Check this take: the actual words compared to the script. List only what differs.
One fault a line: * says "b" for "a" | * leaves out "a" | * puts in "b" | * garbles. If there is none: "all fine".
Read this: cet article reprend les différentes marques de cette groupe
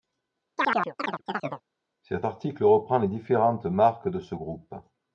* says "ce" for "cette"